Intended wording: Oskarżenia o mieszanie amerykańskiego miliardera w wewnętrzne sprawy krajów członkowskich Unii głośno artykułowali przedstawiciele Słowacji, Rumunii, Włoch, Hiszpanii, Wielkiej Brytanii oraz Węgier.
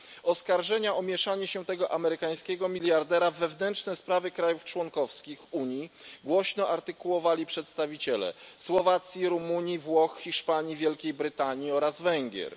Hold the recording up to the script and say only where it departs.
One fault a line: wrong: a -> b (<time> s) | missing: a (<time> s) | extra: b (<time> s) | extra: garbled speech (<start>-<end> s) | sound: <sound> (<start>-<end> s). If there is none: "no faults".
extra: się tego (1.5 s)